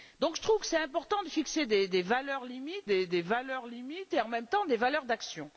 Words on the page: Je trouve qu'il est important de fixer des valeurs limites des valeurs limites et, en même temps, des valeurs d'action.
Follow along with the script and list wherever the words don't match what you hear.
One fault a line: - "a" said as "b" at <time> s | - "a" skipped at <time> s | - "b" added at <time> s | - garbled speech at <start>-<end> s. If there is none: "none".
none